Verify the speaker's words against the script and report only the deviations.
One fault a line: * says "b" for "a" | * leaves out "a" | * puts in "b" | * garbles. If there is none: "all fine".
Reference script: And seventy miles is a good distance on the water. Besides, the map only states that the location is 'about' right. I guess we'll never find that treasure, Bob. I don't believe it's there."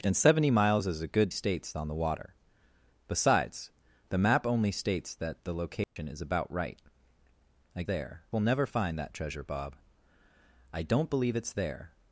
* says "states" for "distance"
* says "there" for "guess"